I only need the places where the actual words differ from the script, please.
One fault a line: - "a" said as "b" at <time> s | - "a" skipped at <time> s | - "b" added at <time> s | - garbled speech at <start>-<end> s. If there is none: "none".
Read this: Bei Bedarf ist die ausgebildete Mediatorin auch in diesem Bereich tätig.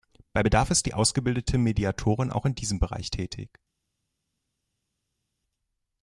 none